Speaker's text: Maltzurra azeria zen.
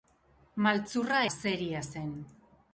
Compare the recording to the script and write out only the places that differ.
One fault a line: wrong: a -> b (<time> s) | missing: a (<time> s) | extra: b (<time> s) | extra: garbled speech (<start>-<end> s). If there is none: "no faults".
no faults